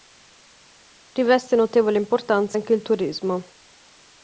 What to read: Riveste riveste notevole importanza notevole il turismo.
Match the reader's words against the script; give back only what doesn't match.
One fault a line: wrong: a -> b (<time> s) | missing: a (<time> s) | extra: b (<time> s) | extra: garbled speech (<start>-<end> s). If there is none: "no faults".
missing: riveste (1.6 s)
wrong: notevole -> anche (2.5 s)